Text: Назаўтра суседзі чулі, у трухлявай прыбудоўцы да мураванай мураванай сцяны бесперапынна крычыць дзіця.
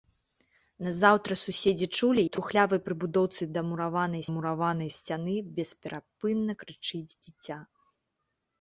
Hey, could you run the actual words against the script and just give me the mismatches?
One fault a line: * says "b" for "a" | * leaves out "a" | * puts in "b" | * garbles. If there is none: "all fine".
all fine